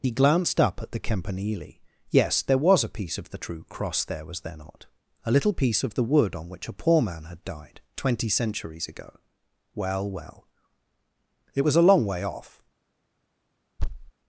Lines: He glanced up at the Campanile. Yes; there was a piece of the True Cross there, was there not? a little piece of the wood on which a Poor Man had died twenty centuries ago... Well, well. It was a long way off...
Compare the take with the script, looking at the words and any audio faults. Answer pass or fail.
fail